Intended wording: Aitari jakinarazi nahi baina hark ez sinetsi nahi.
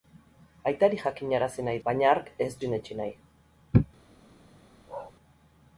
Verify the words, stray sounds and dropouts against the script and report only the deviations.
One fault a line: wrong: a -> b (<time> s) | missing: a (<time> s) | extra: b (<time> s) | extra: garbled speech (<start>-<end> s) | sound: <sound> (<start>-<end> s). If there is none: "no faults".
sound: bark (4.9-5.1 s)